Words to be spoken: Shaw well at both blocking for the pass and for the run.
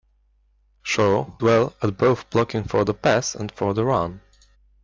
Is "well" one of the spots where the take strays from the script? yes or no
no